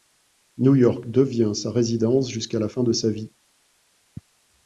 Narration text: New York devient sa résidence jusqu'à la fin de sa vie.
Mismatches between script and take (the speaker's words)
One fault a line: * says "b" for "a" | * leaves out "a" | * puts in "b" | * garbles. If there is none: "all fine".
all fine